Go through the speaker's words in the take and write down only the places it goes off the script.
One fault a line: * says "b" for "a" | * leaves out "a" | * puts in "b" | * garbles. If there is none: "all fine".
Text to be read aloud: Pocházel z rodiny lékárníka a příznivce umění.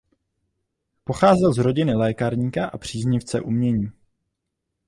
all fine